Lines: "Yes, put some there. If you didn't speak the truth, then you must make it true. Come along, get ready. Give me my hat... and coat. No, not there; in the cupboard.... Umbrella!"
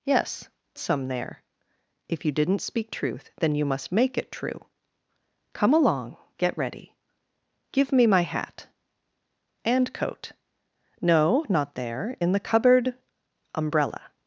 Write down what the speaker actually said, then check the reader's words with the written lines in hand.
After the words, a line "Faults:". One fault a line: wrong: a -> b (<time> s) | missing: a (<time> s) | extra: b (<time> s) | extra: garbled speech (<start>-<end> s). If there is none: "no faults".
"Yes, some there. If you didn't speak truth, then you must make it true. Come along, get ready. Give me my hat... and coat. No, not there; in the cupboard.... Umbrella!"
Faults:
missing: put (0.5 s)
missing: the (2.9 s)